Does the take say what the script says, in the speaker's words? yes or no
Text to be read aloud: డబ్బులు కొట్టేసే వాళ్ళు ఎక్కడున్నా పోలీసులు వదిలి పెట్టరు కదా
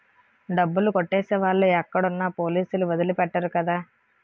yes